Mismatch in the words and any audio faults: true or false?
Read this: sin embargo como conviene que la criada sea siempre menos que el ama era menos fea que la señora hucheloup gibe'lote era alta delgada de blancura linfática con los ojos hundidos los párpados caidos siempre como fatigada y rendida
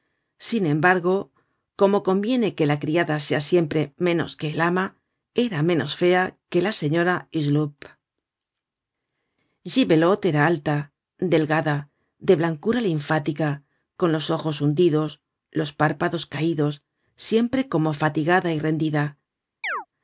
true